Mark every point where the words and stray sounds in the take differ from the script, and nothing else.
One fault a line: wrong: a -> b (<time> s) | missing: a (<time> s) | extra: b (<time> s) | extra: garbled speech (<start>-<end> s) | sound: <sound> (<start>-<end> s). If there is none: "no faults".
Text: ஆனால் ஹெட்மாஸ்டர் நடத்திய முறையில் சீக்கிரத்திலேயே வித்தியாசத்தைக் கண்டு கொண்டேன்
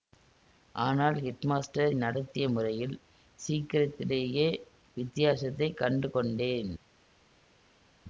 no faults